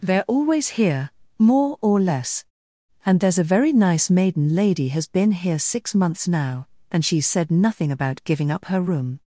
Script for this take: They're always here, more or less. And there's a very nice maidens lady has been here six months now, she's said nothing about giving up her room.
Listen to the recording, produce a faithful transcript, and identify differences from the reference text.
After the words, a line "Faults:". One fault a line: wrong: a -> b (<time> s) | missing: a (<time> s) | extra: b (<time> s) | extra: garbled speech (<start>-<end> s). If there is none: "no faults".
They're always here, more or less. And there's a very nice maiden lady has been here six months now, and she's said nothing about giving up her room.
Faults:
wrong: maidens -> maiden (4.1 s)
extra: and (6.9 s)